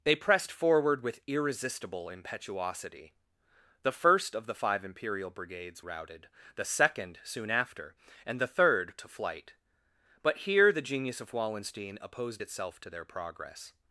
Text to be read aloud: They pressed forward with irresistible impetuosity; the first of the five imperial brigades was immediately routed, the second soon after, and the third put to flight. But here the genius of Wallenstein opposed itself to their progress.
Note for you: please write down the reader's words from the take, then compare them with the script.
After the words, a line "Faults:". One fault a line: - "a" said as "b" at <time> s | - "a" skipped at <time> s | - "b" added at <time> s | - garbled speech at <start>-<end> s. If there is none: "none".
They pressed forward with irresistible impetuosity; the first of the five imperial brigades routed, the second soon after, and the third to flight. But here the genius of Wallenstein opposed itself to their progress.
Faults:
- "was immediately" skipped at 5.8 s
- "put" skipped at 8.9 s